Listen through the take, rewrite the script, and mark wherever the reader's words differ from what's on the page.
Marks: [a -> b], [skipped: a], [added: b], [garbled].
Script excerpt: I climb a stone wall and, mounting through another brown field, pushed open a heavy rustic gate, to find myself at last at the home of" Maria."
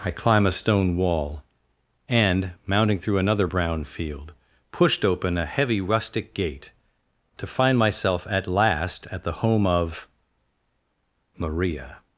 I climb a stone wall and, mounting through another brown field, pushed open a heavy rustic gate, to find myself at last at the home of" Maria."